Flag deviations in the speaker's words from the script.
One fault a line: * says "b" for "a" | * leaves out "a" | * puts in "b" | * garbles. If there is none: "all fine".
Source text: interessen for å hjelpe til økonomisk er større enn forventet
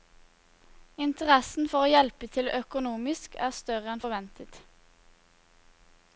all fine